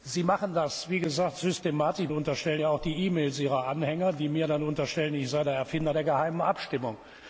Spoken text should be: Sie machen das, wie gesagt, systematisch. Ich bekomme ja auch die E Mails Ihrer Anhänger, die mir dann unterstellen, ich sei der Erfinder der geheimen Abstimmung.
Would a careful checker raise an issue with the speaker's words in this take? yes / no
yes